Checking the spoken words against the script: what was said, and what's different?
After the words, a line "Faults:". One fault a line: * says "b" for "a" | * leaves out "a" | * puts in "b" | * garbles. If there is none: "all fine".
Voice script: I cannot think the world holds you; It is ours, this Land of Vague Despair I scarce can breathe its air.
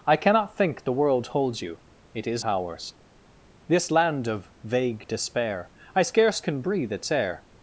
I cannot think the world holds you; It is ours, this Land of Vague Despair I scarce can breathe its air.
Faults:
all fine